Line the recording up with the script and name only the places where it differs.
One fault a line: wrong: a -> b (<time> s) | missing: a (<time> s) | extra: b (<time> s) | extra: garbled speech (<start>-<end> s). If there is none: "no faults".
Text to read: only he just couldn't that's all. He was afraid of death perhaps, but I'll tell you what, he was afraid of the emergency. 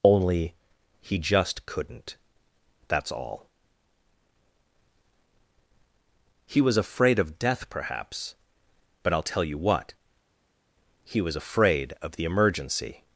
no faults